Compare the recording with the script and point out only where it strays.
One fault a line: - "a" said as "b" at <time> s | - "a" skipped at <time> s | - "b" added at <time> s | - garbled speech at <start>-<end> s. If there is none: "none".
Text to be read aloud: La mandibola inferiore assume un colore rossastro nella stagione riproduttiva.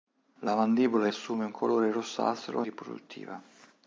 - "inferiore" skipped at 1.1 s
- "nella stagione" skipped at 2.6 s